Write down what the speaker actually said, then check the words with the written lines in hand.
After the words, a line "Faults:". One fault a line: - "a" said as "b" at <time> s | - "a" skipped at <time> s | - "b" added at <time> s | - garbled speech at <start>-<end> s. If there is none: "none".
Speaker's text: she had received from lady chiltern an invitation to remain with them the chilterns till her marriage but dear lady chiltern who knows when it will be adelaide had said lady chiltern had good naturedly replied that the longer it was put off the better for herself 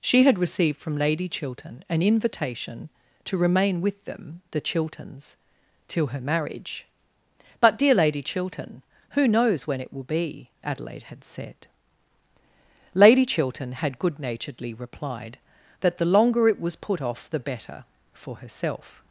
she had received from lady chiltern an invitation to remain with them the chilterns till her marriage but dear lady chiltern who knows when it will be adelaide had said lady chiltern had good naturedly replied that the longer it was put off the better for herself
Faults:
none